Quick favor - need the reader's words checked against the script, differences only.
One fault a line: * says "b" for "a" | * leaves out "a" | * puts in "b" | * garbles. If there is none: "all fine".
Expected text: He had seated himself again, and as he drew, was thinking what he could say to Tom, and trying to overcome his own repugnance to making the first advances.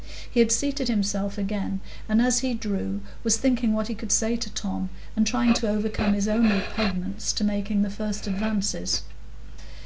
all fine